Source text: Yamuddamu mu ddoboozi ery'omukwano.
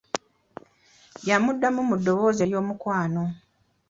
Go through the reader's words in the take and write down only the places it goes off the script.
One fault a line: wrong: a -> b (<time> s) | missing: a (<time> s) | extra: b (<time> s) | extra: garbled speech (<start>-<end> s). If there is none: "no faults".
no faults